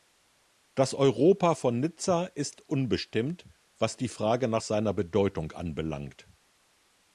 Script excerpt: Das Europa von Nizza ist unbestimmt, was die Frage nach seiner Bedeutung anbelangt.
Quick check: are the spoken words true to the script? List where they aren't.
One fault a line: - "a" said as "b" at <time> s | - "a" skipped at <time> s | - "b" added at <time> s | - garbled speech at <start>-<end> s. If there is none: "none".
none